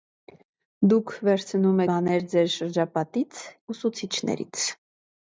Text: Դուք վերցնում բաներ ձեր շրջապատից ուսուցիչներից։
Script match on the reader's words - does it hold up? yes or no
yes